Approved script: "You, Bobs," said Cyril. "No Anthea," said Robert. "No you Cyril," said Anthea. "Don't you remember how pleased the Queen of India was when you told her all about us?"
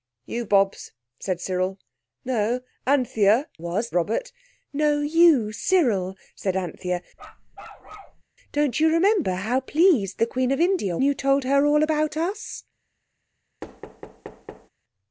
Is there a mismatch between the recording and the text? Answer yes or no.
yes